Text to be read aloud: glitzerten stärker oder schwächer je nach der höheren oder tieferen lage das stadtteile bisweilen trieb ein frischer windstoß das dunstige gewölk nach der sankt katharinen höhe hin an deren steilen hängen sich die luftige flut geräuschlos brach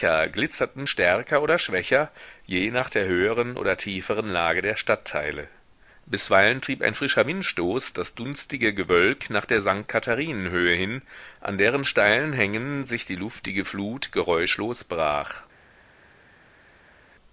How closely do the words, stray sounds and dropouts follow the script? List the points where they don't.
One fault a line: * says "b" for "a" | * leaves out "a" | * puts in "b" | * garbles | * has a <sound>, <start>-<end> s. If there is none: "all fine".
* says "der" for "das"